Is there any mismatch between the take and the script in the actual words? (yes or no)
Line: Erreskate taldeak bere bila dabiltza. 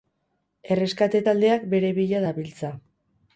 no